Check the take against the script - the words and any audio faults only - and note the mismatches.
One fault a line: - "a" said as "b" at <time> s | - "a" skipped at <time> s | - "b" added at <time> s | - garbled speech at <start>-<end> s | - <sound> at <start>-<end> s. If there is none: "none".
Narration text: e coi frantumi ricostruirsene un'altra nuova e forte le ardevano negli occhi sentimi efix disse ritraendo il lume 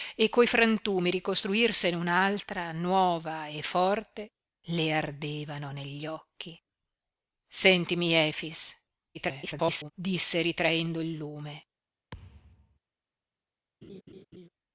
- garbled speech at 9.1-9.9 s
- thud at 12.1-12.8 s
- laugh at 13.8-14.5 s